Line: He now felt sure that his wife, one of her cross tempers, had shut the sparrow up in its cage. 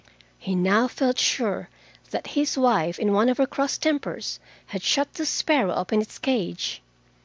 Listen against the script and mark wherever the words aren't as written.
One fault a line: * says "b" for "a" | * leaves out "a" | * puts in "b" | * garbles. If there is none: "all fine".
* puts in "in"